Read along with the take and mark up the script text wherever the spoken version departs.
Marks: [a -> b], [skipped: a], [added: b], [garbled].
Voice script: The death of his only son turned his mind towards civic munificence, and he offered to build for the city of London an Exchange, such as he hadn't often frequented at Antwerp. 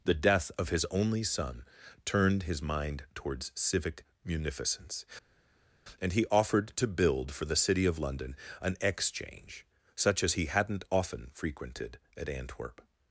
The death of his only son turned his mind towards civic munificence, and he offered to build for the city of London an Exchange, such as he hadn't often frequented at Antwerp.